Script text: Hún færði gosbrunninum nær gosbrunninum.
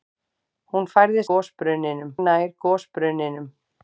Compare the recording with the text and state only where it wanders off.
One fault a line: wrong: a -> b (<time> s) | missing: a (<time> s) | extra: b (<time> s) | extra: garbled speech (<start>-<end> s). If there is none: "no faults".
no faults